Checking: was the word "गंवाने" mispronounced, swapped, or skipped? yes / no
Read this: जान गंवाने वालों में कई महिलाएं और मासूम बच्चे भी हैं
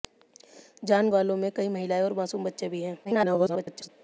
yes